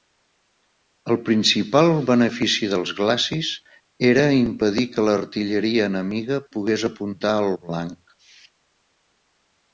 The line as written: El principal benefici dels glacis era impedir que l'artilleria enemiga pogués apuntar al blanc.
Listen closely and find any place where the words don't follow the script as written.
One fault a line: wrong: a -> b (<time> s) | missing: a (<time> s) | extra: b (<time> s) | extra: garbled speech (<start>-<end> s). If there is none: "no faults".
no faults